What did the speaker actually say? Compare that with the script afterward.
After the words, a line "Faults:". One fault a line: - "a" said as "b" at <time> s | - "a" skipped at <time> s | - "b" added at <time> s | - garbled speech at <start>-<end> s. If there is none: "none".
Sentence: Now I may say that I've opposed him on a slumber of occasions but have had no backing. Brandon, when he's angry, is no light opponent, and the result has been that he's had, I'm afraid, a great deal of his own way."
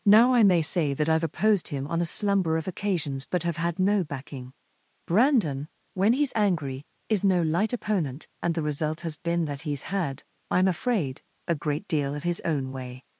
Now I may say that I've opposed him on a slumber of occasions but have had no backing. Brandon, when he's angry, is no light opponent, and the result has been that he's had, I'm afraid, a great deal of his own way."
Faults:
none